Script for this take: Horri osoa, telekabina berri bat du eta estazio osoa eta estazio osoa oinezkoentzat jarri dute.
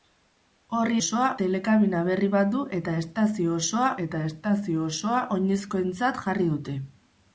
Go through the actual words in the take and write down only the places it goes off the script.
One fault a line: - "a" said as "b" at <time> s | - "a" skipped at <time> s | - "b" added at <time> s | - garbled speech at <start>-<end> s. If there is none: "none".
none